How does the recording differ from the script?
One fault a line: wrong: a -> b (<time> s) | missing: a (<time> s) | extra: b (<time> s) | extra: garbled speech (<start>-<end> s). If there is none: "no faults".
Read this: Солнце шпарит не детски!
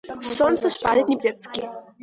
no faults